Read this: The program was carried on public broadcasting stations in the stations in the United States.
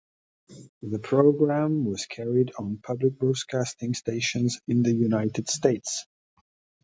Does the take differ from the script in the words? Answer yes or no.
yes